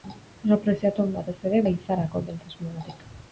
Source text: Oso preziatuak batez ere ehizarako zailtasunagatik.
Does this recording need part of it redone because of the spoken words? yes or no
no